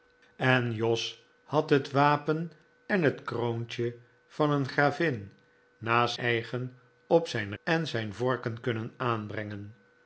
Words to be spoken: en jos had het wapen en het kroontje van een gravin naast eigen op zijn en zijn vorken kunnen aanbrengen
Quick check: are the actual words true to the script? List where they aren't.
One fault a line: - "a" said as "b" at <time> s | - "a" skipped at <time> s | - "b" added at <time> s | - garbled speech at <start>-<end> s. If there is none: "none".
none